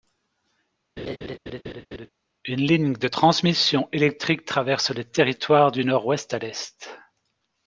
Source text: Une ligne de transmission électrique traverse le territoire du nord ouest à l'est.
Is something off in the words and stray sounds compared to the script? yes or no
yes